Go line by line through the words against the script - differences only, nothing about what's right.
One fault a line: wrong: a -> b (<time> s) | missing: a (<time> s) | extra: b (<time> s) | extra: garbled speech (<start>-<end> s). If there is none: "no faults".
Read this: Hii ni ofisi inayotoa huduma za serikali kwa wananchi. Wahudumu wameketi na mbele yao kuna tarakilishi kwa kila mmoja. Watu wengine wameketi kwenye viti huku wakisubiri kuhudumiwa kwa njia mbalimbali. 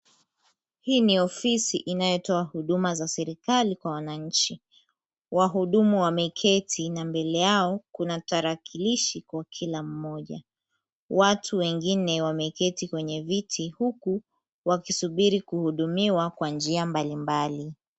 no faults